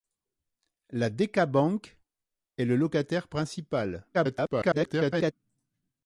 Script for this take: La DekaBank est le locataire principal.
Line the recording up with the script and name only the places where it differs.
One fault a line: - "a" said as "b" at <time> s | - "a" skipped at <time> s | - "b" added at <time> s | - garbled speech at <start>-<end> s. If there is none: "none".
- garbled speech at 4.1-5.3 s